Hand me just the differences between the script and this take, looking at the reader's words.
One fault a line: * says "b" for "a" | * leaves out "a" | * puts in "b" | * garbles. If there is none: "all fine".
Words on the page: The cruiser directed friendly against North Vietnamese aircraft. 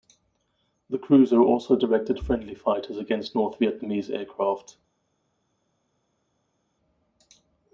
* puts in "also"
* puts in "fighters"